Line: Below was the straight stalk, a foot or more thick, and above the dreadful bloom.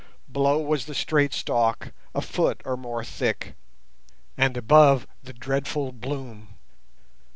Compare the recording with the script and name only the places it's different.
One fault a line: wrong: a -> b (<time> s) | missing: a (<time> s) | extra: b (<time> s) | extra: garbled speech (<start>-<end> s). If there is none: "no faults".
no faults